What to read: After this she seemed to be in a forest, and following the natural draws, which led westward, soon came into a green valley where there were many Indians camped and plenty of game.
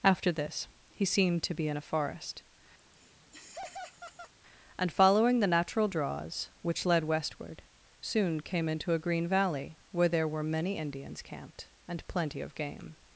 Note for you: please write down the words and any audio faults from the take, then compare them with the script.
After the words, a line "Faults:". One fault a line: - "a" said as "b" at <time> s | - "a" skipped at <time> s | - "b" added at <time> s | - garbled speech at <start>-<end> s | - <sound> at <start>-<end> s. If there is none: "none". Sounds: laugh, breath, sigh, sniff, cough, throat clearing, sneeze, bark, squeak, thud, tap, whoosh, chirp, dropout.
After this he seemed to be in a forest, and following the natural draws, which led westward, soon came into a green valley where there were many Indians camped and plenty of game.
Faults:
- "she" said as "he" at 0.9 s
- laugh at 2.8-4.3 s